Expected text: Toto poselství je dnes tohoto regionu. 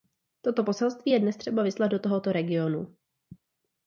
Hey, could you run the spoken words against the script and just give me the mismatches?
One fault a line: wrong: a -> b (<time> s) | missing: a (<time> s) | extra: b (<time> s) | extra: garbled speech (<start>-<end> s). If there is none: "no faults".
extra: třeba vyslat do (1.4 s)